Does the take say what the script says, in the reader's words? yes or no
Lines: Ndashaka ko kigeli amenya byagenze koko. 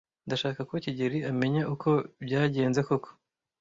no